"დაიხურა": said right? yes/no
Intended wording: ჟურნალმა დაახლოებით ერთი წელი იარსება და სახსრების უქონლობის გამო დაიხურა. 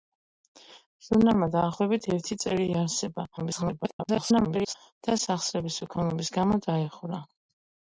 yes